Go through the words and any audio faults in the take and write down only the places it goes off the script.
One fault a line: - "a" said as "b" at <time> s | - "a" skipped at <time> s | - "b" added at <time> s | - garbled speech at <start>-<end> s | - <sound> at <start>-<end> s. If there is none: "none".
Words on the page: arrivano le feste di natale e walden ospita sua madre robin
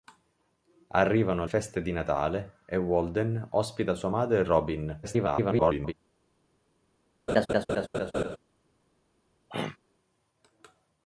- "le" skipped at 1.4 s
- garbled speech at 5.0-5.9 s
- laugh at 7.3-8.4 s
- throat clearing at 9.5-9.8 s